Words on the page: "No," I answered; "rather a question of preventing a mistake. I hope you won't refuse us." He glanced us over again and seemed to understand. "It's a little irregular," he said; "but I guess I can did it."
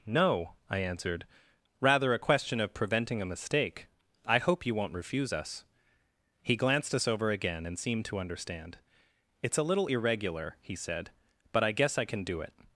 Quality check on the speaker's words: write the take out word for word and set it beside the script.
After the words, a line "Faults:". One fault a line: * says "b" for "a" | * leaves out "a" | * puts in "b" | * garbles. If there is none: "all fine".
"No," I answered; "rather a question of preventing a mistake. I hope you won't refuse us." He glanced us over again and seemed to understand. "It's a little irregular," he said; "but I guess I can do it."
Faults:
* says "do" for "did"